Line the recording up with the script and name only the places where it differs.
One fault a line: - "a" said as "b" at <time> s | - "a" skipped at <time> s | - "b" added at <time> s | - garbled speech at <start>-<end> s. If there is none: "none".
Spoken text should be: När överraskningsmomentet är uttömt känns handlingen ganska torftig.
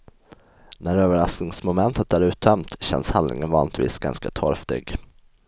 - "vanligtvis" added at 3.5 s